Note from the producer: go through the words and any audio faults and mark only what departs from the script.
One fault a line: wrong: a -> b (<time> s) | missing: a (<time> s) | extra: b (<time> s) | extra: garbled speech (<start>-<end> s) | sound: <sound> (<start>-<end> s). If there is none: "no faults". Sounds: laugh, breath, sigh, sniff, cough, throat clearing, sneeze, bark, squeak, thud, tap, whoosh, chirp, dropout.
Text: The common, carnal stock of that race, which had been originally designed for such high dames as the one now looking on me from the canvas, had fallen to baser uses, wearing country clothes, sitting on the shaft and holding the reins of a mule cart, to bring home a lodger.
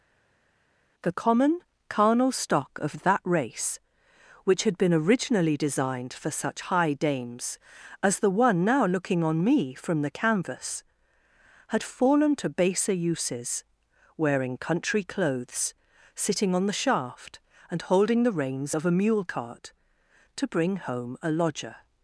no faults